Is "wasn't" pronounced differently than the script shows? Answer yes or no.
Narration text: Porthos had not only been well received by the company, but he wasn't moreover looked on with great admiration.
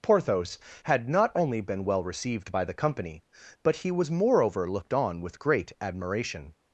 yes